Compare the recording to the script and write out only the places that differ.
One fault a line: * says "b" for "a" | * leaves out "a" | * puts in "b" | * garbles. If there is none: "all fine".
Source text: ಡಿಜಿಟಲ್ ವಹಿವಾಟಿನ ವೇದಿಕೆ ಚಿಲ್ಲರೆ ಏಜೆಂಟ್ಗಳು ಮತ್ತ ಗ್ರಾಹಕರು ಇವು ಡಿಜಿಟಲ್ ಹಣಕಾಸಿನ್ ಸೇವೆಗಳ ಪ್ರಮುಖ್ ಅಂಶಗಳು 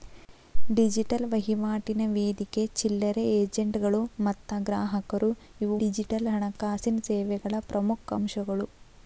all fine